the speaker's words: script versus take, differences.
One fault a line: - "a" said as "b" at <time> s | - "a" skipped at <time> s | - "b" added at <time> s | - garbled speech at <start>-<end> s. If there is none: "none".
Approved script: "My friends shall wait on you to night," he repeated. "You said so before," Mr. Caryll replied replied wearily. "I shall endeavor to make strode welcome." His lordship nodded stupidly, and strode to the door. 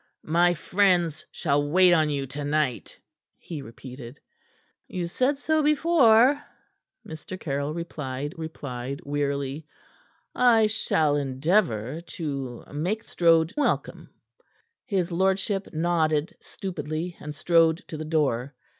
none